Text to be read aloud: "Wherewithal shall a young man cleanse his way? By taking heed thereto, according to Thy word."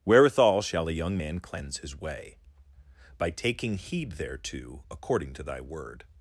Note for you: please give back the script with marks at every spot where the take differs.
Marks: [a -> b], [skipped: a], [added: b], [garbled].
"Wherewithal shall a young man cleanse his way? By taking heed thereto, according to Thy word."